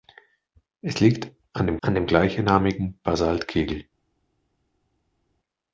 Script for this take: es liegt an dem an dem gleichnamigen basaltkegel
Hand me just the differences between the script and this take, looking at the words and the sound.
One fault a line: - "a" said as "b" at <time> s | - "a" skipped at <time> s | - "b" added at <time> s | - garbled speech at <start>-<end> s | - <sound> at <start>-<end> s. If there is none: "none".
none